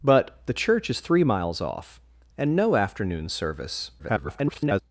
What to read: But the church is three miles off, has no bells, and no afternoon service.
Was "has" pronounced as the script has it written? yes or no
no